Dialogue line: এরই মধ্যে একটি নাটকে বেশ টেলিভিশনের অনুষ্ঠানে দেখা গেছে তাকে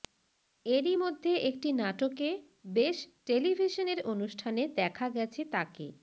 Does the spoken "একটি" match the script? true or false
true